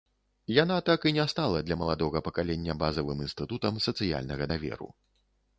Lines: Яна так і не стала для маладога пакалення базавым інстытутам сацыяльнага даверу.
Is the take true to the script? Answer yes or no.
yes